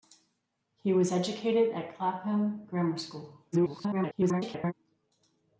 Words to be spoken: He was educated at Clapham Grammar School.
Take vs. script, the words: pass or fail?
fail